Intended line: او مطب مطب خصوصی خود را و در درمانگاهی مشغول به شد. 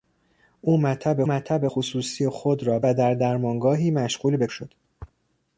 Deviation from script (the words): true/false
false